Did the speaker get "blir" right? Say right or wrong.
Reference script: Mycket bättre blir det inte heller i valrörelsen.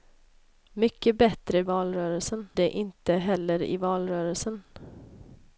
wrong